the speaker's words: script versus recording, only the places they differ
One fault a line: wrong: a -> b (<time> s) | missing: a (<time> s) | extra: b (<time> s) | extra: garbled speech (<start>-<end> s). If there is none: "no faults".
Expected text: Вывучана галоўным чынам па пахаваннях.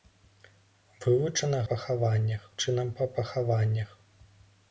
wrong: галоўным -> пахаваннях (1.7 s)